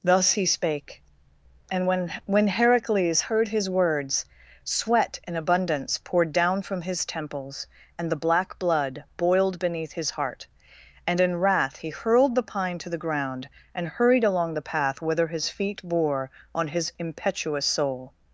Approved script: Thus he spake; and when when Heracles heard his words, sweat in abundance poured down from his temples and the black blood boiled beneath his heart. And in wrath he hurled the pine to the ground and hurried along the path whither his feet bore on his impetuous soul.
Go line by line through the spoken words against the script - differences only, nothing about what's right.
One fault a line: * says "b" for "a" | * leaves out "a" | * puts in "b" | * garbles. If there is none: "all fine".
all fine